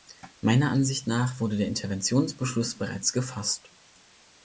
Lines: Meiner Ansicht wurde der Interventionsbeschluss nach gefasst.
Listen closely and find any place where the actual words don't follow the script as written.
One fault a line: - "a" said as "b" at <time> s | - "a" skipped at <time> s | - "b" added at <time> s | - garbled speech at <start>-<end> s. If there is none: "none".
- "nach" added at 1.1 s
- "nach" said as "bereits" at 2.8 s